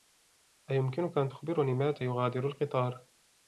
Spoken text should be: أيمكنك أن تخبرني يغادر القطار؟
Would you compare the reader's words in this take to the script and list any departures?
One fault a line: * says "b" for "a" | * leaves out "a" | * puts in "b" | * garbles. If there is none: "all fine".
* puts in "متى"